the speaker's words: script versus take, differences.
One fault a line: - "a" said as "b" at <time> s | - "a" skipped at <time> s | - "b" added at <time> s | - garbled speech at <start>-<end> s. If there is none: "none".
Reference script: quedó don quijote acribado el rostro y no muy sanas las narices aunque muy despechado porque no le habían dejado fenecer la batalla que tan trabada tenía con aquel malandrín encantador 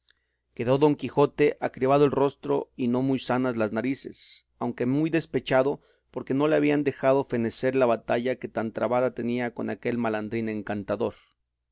none